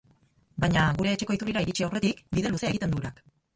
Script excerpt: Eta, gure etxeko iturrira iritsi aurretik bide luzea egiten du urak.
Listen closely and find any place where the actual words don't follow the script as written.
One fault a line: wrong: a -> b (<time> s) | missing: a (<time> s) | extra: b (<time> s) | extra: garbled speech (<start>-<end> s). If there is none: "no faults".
wrong: Eta -> Baina (0.6 s)